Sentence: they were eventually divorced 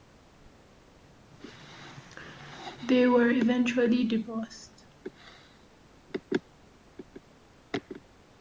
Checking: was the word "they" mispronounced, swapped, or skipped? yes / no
no